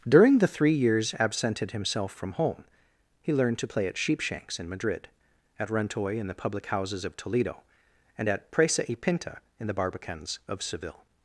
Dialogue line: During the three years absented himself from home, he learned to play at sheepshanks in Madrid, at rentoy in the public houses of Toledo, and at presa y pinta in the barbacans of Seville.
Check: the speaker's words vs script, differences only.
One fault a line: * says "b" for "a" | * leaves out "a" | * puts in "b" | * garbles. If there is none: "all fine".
all fine